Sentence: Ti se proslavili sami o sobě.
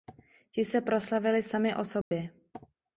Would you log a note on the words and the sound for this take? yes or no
yes